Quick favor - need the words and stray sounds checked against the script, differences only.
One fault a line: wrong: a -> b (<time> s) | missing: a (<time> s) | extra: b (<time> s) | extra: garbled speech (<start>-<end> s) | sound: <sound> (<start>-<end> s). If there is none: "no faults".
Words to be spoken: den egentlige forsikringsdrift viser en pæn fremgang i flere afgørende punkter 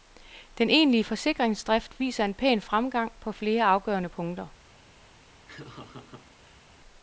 wrong: i -> på (3.2 s)
sound: laugh (5.5-6.6 s)